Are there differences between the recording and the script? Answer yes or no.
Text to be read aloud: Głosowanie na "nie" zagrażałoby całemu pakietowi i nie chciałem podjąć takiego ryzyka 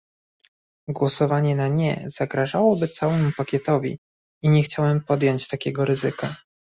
no